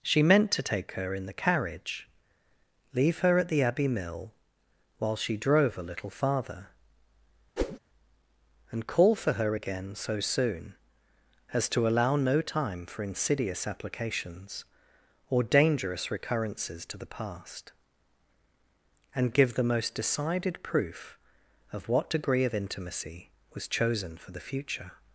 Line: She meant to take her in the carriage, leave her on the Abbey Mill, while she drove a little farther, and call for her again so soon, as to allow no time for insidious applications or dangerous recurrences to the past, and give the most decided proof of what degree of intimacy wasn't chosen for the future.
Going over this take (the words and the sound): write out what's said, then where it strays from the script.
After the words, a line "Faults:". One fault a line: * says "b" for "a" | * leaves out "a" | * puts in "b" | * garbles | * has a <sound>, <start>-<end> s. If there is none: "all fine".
She meant to take her in the carriage, leave her at the Abbey Mill, while she drove a little farther, and call for her again so soon, as to allow no time for insidious applications or dangerous recurrences to the past, and give the most decided proof of what degree of intimacy was chosen for the future.
Faults:
* says "at" for "on"
* has a whoosh, 7.6-7.8 s
* says "was" for "wasn't"